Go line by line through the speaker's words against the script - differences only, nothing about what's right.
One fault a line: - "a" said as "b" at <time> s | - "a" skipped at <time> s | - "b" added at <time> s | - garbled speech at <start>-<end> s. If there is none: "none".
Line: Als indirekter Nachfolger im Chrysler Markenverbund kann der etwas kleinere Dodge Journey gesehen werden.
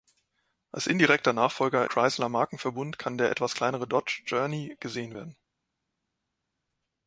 - "im" skipped at 1.9 s